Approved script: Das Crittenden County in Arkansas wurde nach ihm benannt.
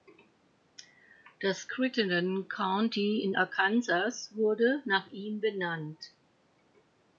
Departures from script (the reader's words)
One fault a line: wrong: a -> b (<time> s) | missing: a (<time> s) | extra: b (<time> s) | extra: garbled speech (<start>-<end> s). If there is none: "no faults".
no faults